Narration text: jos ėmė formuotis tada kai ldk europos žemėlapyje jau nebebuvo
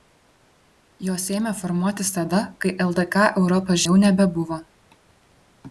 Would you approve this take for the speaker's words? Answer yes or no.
no